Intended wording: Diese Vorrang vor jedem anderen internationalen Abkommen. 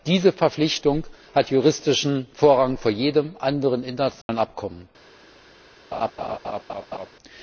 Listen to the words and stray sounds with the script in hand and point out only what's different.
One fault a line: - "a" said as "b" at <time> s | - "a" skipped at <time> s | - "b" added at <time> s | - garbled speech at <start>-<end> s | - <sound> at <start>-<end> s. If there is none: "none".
- "Verpflichtung hat juristischen" added at 0.3 s
- dropout at 4.2-4.3 s
- laugh at 5.9-7.1 s